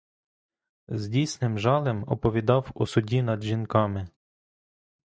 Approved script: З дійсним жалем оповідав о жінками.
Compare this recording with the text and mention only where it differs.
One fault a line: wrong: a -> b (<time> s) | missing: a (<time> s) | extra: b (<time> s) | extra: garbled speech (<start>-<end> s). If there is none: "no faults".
extra: суді над (2.8 s)